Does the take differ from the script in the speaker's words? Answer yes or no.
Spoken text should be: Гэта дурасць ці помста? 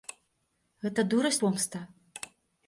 yes